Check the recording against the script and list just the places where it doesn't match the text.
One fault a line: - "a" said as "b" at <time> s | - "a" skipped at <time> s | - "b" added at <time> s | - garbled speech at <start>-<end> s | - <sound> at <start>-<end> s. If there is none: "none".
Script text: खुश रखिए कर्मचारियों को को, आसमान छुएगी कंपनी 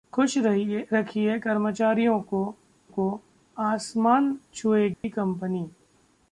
- dropout at 4.9-5.0 s